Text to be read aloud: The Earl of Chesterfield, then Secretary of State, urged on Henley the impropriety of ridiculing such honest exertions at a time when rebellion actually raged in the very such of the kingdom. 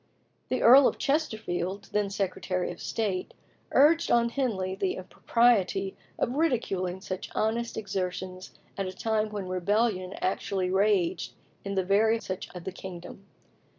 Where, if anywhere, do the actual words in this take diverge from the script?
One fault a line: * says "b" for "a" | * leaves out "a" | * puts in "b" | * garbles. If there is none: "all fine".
all fine